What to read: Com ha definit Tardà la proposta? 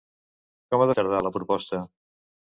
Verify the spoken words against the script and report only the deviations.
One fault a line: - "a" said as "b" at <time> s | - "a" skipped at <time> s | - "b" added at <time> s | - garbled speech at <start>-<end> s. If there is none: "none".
- "definit" skipped at 0.9 s